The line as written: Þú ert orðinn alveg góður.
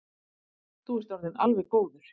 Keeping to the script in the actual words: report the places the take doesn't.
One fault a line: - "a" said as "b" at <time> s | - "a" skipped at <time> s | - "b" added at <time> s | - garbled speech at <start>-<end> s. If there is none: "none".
none